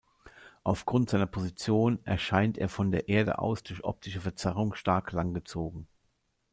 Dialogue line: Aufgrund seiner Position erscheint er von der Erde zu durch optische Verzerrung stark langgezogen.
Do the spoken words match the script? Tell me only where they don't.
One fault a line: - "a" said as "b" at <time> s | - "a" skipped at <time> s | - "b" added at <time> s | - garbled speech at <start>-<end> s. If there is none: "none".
- "zu" said as "aus" at 3.4 s